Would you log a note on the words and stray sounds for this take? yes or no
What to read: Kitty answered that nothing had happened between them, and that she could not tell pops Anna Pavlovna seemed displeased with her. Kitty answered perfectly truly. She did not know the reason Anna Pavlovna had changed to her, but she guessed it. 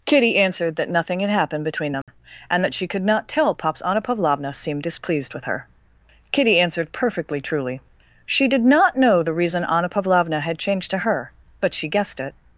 yes